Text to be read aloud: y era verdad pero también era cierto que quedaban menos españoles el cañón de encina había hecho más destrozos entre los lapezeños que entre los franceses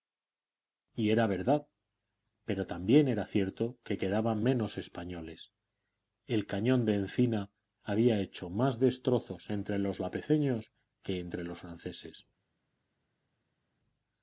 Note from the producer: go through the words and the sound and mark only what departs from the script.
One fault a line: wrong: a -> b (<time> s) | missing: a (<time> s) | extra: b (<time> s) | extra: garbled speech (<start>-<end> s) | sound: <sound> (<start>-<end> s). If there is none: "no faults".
no faults